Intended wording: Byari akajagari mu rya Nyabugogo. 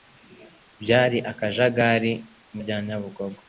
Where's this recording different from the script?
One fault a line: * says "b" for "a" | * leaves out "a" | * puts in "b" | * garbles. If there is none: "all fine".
all fine